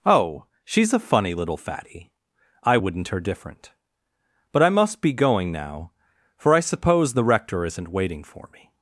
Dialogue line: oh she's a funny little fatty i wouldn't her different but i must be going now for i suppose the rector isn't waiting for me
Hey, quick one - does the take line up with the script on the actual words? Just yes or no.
yes